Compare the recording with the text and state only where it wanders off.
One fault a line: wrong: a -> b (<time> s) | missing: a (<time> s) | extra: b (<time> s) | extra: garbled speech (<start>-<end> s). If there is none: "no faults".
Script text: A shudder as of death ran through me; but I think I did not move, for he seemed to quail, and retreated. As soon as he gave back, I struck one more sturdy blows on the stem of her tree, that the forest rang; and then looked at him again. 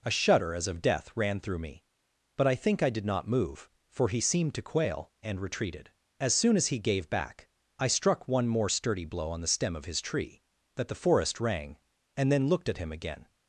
wrong: blows -> blow (9.0 s)
wrong: her -> his (9.8 s)